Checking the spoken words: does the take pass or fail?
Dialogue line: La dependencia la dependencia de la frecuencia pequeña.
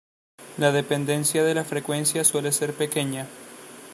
fail